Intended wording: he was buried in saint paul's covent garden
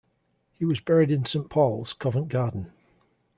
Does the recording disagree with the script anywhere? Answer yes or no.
no